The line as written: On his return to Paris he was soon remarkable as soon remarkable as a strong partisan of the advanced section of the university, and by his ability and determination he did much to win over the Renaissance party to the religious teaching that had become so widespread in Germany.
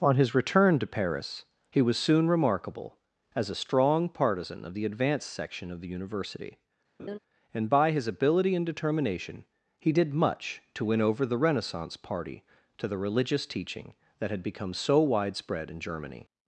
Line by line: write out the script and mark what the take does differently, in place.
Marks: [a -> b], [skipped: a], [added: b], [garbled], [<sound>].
On his return to Paris he was soon remarkable as [skipped: soon remarkable as] a strong partisan of the advanced section of the university, [laugh] and by his ability and determination he did much to win over the Renaissance party to the religious teaching that had become so widespread in Germany.